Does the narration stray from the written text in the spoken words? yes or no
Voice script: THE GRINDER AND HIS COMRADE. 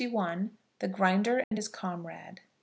no